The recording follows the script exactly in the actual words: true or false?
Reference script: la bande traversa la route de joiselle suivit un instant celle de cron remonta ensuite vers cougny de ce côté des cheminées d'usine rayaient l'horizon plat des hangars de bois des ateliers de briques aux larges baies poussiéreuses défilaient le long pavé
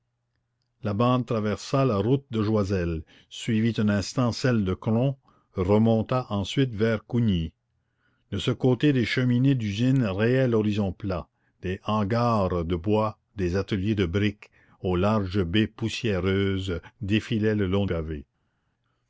true